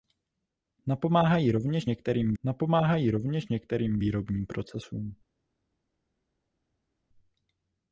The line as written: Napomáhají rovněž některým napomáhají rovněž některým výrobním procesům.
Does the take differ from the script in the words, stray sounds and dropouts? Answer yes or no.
no